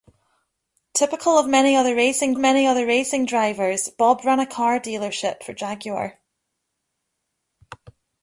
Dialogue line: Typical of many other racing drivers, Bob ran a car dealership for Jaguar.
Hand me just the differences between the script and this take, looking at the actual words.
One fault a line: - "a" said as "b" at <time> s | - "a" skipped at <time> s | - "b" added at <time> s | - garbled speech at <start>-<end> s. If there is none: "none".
- "many other racing" added at 2.4 s